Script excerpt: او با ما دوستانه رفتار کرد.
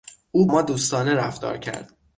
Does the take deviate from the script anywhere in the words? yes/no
yes